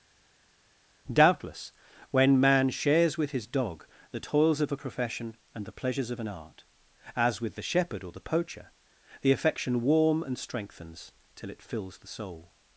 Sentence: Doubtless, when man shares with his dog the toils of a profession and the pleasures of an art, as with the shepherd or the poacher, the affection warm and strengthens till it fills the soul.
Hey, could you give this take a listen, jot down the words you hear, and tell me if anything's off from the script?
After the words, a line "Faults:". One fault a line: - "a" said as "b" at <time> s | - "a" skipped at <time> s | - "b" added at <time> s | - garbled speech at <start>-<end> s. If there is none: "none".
Doubtless, when man shares with his dog the toils of a profession and the pleasures of an art, as with the shepherd or the poacher, the affection warm and strengthens till it fills the soul.
Faults:
none